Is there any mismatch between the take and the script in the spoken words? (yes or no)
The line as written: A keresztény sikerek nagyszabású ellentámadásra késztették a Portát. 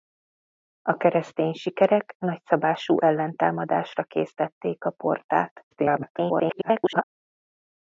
yes